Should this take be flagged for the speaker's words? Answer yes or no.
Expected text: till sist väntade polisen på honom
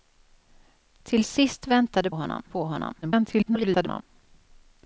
yes